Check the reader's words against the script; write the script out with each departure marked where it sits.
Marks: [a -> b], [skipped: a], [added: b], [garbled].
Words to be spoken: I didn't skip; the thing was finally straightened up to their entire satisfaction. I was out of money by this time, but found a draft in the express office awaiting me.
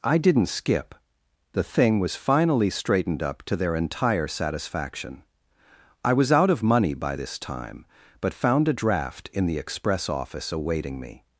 I didn't skip; the thing was finally straightened up to their entire satisfaction. I was out of money by this time, but found a draft in the express office awaiting me.